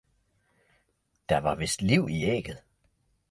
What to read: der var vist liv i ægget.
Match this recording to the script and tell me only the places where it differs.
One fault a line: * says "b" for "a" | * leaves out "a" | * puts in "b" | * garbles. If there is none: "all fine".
all fine